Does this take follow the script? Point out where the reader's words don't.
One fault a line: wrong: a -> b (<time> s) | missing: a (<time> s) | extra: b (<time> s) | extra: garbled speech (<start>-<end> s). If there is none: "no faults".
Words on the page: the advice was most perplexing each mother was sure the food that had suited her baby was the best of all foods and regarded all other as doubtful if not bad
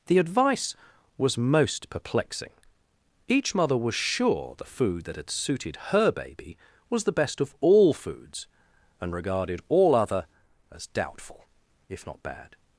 no faults